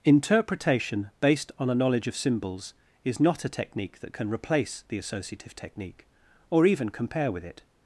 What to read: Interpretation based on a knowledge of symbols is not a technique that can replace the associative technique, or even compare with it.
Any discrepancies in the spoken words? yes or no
no